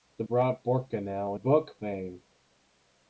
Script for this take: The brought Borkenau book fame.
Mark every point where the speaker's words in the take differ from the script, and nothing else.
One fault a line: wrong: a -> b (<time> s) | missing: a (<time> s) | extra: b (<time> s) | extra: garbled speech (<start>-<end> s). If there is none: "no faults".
no faults